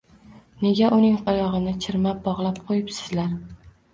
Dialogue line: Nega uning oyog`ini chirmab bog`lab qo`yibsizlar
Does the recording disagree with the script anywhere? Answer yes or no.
no